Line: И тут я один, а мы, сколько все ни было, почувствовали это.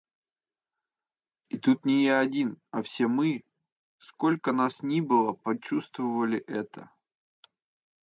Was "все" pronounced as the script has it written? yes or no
no